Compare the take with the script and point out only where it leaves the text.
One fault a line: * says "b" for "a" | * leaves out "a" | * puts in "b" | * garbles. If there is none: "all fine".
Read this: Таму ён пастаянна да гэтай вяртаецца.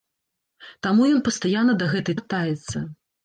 all fine